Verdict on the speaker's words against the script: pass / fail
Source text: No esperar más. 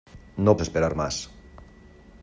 pass